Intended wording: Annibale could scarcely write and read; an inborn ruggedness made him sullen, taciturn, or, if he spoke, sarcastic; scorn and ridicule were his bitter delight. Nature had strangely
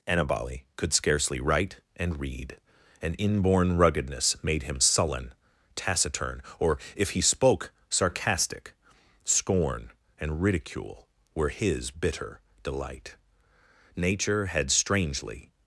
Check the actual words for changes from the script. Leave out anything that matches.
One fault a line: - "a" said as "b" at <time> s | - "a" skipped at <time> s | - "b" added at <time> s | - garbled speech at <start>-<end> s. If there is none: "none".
none